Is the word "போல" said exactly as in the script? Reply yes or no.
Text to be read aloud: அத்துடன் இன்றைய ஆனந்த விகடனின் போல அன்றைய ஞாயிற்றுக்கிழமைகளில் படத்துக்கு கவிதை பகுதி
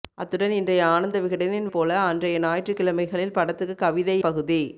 yes